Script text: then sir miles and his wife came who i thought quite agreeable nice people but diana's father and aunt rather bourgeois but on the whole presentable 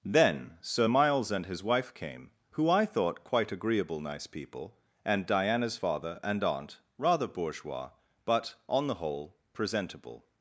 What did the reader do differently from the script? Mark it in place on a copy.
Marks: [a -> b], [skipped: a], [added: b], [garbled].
then sir miles and his wife came who i thought quite agreeable nice people [but -> and] diana's father and aunt rather bourgeois but on the whole presentable